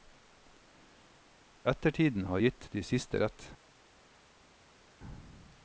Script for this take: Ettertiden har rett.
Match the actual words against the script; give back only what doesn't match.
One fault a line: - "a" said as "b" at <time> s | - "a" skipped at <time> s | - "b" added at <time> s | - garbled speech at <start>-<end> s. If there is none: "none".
- "gitt de siste" added at 2.4 s